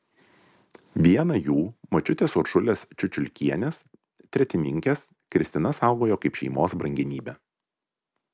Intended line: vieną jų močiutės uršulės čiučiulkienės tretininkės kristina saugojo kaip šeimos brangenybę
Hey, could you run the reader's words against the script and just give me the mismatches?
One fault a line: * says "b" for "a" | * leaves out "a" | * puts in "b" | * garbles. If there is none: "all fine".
all fine